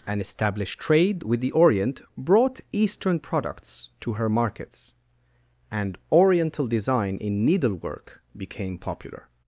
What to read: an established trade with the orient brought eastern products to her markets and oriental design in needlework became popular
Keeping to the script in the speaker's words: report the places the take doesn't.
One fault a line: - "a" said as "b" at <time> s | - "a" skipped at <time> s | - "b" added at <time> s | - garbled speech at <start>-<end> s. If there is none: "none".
none